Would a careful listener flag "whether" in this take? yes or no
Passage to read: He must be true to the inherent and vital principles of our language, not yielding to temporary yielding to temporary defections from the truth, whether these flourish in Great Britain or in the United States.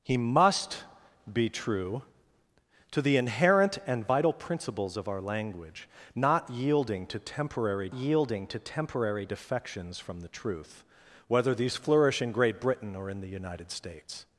no